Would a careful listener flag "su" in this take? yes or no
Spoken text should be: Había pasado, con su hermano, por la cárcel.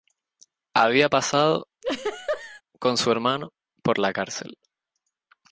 no